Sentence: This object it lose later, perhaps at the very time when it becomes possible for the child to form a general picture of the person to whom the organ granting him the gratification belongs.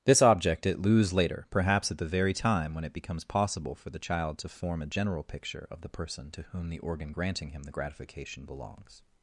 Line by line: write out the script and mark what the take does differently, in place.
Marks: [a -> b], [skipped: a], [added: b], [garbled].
This object it lose later, perhaps at the very time when it becomes possible for the child to form a general picture of the person to whom the organ granting him the gratification belongs.